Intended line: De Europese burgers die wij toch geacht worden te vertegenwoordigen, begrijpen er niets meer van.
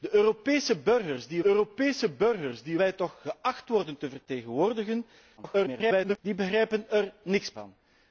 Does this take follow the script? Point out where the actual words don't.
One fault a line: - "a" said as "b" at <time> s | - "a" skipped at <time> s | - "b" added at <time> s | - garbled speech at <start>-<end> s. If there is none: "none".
- "Europese burgers die" added at 1.5 s
- garbled speech at 5.4-6.2 s
- "meer" skipped at 7.5 s